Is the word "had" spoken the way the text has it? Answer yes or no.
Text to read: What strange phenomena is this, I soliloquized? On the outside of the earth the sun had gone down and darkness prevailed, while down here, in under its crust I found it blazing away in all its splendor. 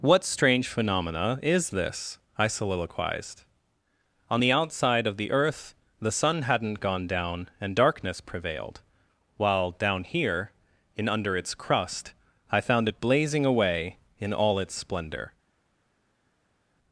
no